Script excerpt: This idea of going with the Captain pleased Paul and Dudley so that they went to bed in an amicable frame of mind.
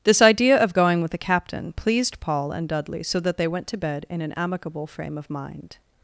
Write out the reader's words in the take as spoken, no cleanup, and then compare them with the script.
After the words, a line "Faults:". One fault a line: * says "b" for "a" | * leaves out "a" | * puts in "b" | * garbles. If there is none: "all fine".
This idea of going with the Captain pleased Paul and Dudley so that they went to bed in an amicable frame of mind.
Faults:
all fine